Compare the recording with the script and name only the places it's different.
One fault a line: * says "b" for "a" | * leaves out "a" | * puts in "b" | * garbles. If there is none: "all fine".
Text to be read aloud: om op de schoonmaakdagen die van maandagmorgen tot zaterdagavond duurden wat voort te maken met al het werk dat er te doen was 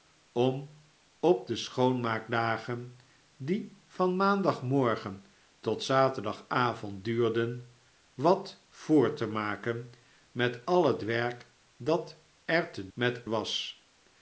* says "met" for "doen"